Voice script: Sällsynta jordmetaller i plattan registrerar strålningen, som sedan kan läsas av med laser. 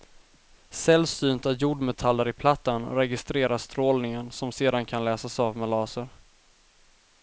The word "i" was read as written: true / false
true